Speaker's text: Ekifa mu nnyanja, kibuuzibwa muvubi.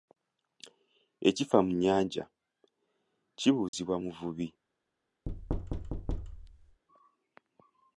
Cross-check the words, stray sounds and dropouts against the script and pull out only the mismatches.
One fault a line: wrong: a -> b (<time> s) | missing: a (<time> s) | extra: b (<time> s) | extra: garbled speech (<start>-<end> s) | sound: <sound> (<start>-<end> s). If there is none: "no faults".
sound: dropout (3.7-3.7 s)
sound: thud (5.3-6.8 s)